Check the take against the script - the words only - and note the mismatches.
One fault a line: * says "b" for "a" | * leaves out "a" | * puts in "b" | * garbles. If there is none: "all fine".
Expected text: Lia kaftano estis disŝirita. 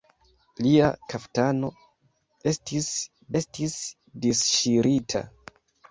* puts in "estis"